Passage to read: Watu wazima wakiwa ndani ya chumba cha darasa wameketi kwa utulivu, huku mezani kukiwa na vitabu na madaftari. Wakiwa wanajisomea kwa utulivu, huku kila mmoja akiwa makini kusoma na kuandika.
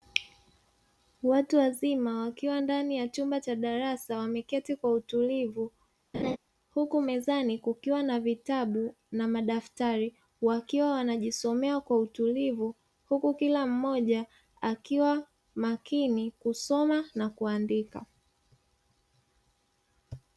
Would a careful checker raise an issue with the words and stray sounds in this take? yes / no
yes